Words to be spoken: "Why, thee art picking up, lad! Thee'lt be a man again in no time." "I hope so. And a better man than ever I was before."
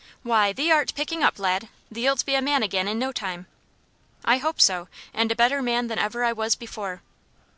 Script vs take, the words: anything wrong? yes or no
no